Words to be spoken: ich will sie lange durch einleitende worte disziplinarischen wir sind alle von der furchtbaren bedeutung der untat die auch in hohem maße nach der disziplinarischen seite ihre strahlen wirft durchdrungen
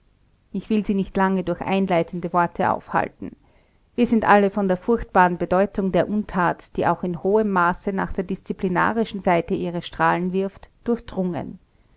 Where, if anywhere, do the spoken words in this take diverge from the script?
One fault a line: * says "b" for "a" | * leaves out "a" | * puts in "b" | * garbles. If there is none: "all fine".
* puts in "nicht"
* says "aufhalten" for "disziplinarischen"